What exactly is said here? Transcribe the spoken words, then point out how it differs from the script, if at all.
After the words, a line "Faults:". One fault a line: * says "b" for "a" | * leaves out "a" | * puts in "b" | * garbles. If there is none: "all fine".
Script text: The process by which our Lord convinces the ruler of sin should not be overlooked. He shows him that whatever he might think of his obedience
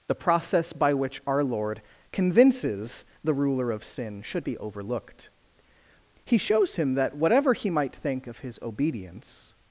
The process by which our Lord convinces the ruler of sin should be overlooked. He shows him that whatever he might think of his obedience
Faults:
* leaves out "not"